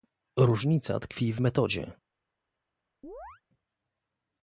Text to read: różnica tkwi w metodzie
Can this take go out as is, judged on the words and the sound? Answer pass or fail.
fail